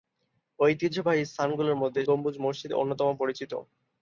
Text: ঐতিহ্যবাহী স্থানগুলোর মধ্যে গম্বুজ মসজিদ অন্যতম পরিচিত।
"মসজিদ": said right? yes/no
yes